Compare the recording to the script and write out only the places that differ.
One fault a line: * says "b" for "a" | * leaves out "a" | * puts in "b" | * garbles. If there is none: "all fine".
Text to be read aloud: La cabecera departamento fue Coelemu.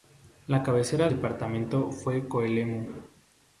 all fine